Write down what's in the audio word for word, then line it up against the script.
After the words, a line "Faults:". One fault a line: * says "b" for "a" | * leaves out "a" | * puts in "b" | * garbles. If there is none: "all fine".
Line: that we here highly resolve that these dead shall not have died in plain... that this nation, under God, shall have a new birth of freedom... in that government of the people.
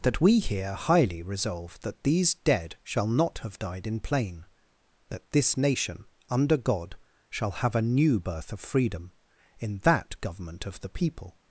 that we here highly resolve that these dead shall not have died in plain... that this nation, under God, shall have a new birth of freedom... in that government of the people.
Faults:
all fine